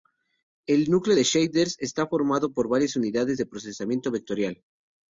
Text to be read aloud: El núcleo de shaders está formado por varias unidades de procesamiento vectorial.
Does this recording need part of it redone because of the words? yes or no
no